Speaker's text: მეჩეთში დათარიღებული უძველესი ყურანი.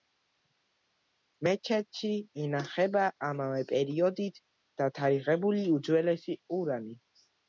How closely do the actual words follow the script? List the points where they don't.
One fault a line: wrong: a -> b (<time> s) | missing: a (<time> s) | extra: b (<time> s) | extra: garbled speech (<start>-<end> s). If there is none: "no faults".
extra: ინახება ამავე პერიოდით (2.5 s)